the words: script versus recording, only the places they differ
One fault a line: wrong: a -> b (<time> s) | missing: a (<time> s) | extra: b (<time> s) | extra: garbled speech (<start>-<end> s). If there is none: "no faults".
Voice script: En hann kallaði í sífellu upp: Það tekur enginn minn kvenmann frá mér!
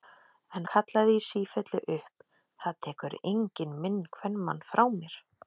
missing: hann (0.7 s)